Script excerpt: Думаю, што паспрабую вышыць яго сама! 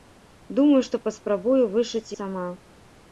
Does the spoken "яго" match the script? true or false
false